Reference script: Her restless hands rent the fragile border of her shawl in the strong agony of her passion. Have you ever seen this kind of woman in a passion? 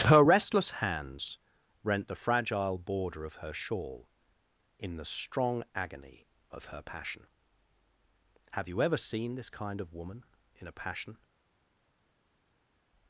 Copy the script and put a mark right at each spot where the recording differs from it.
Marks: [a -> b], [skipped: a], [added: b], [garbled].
Her restless hands rent the fragile border of her shawl in the strong agony of her passion. Have you ever seen this kind of woman in a passion?